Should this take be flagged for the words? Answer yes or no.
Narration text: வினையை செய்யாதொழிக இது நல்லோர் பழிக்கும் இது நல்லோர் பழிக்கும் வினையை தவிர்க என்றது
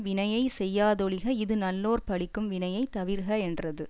yes